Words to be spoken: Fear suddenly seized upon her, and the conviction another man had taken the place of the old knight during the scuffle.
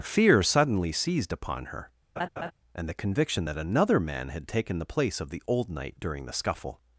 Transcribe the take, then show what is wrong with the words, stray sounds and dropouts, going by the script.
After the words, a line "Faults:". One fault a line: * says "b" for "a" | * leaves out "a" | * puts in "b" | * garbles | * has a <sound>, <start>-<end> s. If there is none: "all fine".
Fear suddenly seized upon her, and the conviction that another man had taken the place of the old knight during the scuffle.
Faults:
* has a laugh, 2.2-2.5 s
* puts in "that"